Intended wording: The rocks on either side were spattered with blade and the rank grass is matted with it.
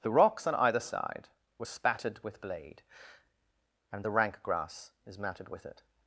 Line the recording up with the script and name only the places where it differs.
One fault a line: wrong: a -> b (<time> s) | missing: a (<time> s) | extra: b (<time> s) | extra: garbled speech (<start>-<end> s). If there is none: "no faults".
no faults